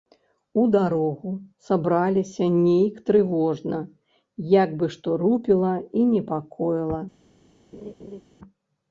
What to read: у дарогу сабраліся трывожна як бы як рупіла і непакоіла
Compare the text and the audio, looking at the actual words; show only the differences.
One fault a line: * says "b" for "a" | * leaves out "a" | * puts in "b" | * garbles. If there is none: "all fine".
* puts in "нейк"
* says "што" for "як"